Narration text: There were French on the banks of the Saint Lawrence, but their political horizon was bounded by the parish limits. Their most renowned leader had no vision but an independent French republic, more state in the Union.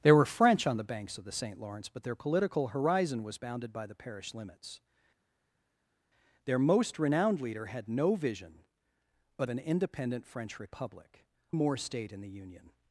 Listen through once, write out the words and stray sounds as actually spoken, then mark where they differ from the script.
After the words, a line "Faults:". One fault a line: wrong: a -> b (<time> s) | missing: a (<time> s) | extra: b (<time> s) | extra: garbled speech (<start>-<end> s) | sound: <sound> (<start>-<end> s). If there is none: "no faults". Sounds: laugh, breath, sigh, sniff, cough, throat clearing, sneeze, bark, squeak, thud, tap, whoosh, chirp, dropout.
There were French on the banks of the Saint Lawrence, but their political horizon was bounded by the parish limits. Their most renowned leader had no vision but an independent French republic, more state in the Union.
Faults:
no faults